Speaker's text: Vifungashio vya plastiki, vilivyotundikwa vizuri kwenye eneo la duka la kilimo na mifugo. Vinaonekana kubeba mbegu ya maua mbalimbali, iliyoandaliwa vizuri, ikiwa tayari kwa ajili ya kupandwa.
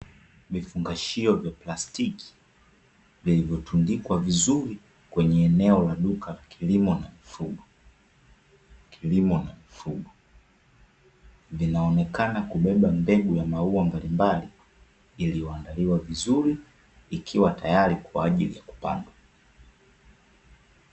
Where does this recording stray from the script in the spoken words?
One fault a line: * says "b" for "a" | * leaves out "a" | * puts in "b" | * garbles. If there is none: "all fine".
* puts in "kilimo na mifugo"